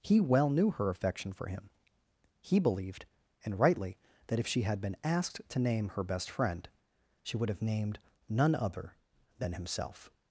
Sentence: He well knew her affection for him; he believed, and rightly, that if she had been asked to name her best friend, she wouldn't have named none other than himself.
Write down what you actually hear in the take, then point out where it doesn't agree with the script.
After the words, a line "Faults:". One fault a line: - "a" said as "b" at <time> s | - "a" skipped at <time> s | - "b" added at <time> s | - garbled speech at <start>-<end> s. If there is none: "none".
He well knew her affection for him; he believed, and rightly, that if she had been asked to name her best friend, she would have named none other than himself.
Faults:
- "wouldn't" said as "would" at 7.4 s